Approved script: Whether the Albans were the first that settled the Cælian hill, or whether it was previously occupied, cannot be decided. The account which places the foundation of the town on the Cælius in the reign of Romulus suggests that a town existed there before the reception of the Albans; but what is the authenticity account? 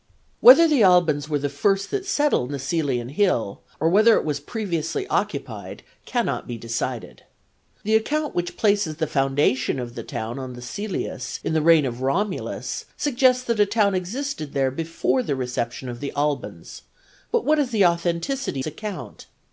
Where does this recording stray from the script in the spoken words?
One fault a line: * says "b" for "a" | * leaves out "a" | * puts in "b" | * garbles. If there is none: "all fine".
all fine